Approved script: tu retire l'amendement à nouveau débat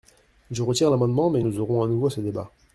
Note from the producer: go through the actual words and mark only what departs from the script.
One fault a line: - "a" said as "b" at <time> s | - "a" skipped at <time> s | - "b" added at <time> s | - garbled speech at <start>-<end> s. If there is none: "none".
- "tu" said as "je" at 0.5 s
- "mais nous aurons" added at 1.3 s
- "ce" added at 2.1 s